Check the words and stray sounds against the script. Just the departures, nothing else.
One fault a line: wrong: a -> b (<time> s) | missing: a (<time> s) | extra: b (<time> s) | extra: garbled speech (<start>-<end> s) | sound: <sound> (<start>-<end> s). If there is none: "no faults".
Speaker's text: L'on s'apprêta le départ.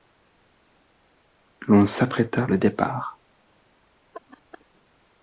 sound: laugh (4.1-4.7 s)